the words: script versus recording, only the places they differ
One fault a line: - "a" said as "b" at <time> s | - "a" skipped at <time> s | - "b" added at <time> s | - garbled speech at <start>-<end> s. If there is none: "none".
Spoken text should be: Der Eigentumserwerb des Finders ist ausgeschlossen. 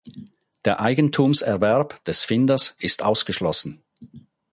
none